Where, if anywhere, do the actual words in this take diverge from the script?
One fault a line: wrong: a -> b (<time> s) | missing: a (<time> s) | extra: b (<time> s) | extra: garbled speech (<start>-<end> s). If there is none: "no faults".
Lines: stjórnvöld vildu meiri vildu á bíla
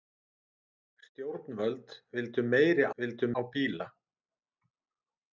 no faults